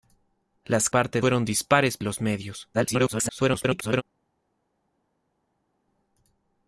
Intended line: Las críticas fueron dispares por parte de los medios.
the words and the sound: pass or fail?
fail